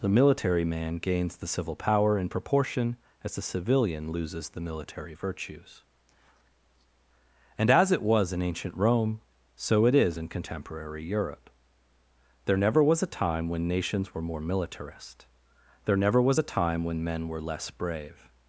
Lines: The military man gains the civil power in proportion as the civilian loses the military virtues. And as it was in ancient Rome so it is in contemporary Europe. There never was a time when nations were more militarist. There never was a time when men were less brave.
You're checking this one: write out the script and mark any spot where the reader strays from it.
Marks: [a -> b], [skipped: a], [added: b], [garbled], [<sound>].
The military man gains the civil power in proportion as the civilian loses the military virtues. And as it was in ancient Rome so it is in contemporary Europe. There never was a time when nations were more militarist. There never was a time when men were less brave.